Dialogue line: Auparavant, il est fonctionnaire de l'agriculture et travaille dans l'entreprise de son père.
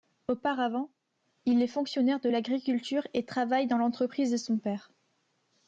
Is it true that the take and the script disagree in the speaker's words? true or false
false